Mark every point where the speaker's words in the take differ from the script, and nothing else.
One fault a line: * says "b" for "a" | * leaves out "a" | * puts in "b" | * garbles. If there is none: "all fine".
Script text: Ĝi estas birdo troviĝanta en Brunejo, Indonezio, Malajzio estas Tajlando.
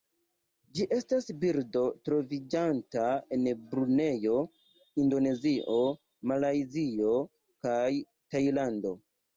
* says "kaj" for "estas"